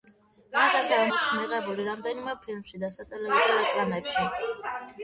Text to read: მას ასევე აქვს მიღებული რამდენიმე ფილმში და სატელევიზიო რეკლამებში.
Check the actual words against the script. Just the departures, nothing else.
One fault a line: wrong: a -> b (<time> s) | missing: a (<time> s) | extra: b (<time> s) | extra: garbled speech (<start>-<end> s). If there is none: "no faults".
no faults